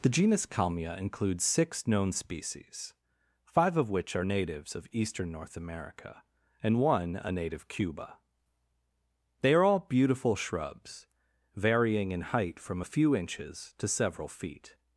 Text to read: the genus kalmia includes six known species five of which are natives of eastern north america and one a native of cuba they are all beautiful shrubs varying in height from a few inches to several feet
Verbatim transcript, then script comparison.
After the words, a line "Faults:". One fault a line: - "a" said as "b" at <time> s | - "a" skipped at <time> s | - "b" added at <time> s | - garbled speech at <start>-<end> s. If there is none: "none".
the genus kalmia includes six known species five of which are natives of eastern north america and one a native cuba they are all beautiful shrubs varying in height from a few inches to several feet
Faults:
- "of" skipped at 7.7 s